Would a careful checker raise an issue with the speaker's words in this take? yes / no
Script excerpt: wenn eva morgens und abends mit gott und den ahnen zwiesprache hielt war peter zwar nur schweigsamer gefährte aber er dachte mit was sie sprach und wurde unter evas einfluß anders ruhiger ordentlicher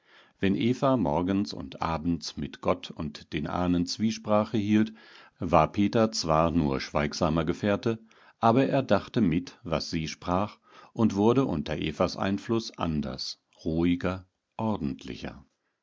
no